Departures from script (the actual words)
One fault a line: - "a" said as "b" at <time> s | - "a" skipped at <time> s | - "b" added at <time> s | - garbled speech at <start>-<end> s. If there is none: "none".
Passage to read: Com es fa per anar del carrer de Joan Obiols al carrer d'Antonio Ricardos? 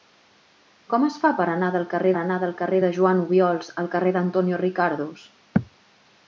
- "anar del carrer" added at 2.2 s